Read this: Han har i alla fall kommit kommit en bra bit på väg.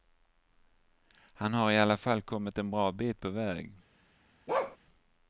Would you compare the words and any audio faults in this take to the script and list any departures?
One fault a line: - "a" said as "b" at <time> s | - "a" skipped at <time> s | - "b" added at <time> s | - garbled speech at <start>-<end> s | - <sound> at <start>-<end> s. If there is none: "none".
- "kommit" skipped at 2.6 s
- bark at 4.5-4.8 s